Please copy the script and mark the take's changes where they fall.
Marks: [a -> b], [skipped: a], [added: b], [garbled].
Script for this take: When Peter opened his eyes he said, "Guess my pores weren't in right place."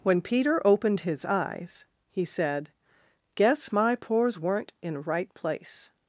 When Peter opened his eyes he said, "Guess my pores weren't in right place."